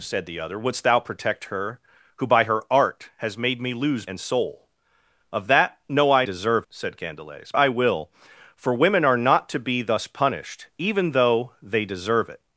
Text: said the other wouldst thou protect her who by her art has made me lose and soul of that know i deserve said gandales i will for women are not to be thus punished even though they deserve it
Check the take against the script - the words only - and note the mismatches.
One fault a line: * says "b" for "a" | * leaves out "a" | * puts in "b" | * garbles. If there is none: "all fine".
all fine